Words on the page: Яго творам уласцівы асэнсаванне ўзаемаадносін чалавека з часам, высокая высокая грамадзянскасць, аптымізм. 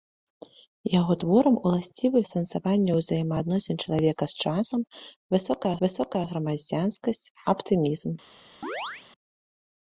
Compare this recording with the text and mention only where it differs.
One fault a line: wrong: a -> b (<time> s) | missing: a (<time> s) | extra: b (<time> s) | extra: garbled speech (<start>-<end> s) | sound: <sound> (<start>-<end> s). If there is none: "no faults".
sound: chirp (8.6-9.1 s)